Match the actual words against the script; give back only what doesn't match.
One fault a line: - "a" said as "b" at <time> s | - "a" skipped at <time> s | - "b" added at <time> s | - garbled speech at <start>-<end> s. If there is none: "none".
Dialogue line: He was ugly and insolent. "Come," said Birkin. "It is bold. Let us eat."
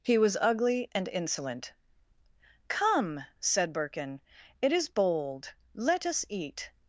none